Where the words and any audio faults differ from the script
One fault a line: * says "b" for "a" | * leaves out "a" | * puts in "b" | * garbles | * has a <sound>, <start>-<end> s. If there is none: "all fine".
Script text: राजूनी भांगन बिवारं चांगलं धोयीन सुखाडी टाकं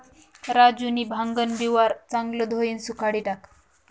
all fine